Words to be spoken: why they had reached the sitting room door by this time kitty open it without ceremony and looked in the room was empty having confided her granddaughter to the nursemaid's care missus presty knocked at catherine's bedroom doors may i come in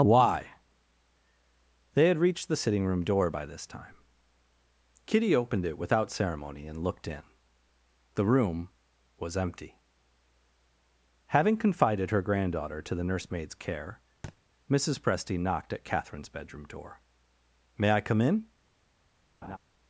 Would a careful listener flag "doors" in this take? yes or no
yes